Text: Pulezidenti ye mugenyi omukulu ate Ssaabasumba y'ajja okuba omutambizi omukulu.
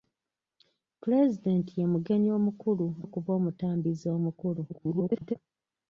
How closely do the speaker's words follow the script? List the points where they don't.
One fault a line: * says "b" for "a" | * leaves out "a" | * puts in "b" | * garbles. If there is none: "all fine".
* leaves out "ate Ssaabasumba y'ajja"
* garbles